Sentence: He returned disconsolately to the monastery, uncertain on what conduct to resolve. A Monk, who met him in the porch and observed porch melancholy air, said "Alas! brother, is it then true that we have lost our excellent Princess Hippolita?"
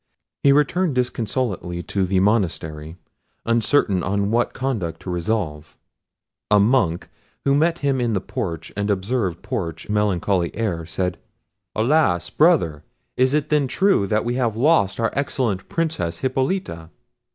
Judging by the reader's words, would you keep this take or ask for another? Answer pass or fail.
pass